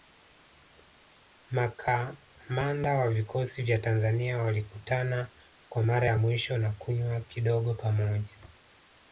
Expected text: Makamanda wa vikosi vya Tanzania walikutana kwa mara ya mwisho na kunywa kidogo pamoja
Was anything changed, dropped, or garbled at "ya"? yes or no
no